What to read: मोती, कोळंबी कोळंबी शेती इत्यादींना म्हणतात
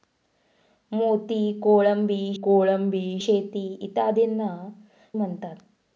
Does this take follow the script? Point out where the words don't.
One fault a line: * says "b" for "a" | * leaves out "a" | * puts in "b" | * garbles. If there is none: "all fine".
all fine